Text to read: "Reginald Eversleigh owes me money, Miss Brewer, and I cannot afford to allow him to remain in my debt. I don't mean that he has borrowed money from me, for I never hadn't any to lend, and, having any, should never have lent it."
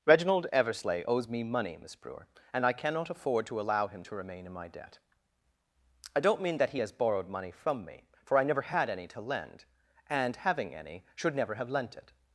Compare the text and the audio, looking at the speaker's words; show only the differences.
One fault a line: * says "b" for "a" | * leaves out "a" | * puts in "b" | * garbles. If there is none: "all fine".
* says "had" for "hadn't"